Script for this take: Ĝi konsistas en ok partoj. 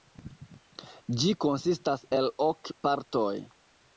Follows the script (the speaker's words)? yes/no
no